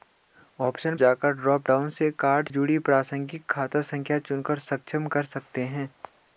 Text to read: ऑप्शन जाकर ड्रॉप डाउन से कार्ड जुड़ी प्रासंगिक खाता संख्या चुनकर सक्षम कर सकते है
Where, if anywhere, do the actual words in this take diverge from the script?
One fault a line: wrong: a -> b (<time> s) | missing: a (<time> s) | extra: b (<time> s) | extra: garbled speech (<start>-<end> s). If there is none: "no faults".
no faults